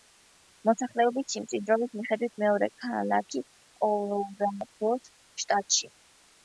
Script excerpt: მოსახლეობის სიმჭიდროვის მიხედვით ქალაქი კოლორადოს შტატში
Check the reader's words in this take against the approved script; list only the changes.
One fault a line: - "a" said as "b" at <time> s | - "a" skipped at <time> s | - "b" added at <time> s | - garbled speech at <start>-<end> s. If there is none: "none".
- "მეორე" added at 2.5 s